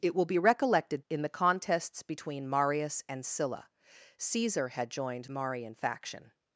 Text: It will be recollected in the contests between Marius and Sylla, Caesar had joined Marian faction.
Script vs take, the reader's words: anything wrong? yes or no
no